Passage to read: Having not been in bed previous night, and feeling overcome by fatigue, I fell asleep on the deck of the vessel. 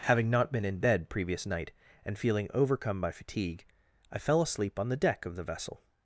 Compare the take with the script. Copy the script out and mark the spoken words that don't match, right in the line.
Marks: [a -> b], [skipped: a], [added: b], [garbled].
Having not been in bed previous night, and feeling overcome by fatigue, I fell asleep on the deck of the vessel.